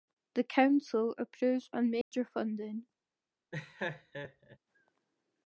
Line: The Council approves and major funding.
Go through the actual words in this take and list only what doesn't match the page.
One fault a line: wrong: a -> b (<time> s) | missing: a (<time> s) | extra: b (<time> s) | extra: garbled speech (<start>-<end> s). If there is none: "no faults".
no faults